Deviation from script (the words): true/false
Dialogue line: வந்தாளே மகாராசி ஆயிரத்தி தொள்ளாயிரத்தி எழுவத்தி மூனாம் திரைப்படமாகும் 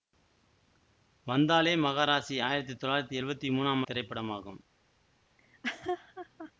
false